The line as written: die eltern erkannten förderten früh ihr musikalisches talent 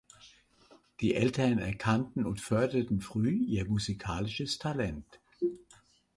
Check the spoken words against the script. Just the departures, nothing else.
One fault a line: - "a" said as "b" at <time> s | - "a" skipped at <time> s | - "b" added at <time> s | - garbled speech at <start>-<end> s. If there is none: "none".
- "und" added at 2.2 s